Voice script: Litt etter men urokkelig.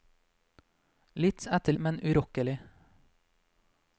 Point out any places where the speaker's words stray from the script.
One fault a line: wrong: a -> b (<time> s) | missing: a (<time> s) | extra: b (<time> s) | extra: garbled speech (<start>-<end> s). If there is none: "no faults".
no faults